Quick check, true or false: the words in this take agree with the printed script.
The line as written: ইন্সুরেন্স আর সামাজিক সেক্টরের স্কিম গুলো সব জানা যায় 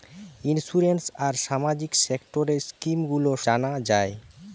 false